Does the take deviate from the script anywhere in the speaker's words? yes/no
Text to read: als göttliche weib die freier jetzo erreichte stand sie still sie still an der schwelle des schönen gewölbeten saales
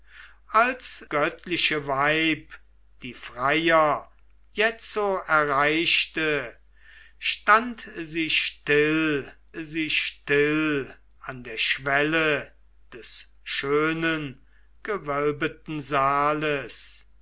no